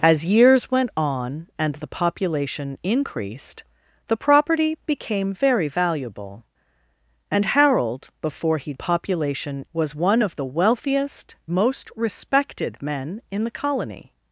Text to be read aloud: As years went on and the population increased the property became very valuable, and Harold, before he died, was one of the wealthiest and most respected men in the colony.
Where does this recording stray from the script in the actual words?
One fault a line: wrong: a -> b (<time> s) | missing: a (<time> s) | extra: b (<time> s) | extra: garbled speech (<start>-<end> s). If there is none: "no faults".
wrong: died -> population (8.7 s)
missing: and (11.4 s)